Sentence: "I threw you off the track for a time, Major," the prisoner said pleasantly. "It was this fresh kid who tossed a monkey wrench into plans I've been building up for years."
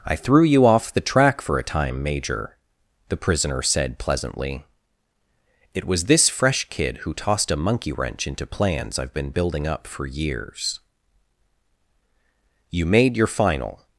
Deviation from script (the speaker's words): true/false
true